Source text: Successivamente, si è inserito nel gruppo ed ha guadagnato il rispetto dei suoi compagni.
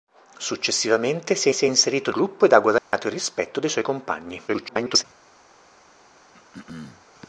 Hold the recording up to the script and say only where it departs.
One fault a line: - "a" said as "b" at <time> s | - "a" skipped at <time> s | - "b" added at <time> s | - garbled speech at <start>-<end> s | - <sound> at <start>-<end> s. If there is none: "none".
- "si" added at 1.5 s
- "nel" skipped at 2.1 s
- dropout at 2.8-2.9 s
- garbled speech at 4.5-5.0 s
- throat clearing at 6.3-7.0 s